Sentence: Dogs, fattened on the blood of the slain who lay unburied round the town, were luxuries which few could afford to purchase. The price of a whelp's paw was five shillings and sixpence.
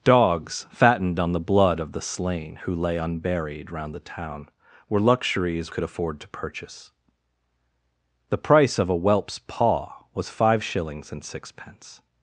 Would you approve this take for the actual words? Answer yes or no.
no